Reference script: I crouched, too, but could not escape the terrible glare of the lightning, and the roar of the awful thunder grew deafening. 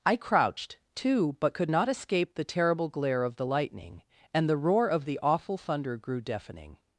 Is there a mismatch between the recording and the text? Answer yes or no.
no